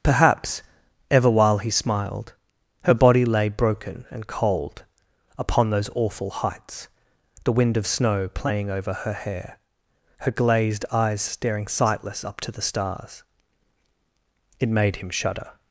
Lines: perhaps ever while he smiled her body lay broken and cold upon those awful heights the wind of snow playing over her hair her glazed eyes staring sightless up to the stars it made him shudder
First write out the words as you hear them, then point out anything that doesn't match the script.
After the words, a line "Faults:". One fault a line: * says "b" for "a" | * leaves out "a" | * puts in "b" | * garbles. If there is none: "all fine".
perhaps ever while he smiled her body lay broken and cold upon those awful heights the wind of snow playing over her hair her glazed eyes staring sightless up to the stars it made him shudder
Faults:
all fine